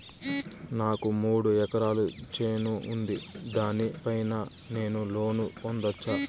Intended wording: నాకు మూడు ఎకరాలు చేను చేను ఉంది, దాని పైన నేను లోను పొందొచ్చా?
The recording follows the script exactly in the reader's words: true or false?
false